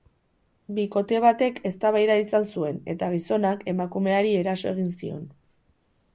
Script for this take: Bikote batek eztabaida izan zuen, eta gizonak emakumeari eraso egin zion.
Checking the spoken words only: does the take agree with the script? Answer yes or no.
yes